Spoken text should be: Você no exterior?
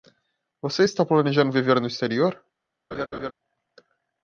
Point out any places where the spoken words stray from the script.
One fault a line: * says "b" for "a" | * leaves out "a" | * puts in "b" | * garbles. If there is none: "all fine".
* puts in "está planejando viver"